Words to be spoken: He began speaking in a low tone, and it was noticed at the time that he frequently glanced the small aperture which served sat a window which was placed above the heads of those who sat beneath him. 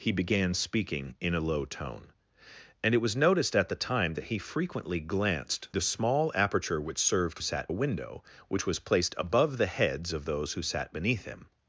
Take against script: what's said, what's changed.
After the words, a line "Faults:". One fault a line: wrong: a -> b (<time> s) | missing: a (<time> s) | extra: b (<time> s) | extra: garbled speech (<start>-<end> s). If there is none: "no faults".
He began speaking in a low tone, and it was noticed at the time that he frequently glanced the small aperture which served sat a window which was placed above the heads of those who sat beneath him.
Faults:
no faults